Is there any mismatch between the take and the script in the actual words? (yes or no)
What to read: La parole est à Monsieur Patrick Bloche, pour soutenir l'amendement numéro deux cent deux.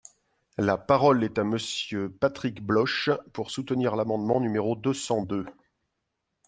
no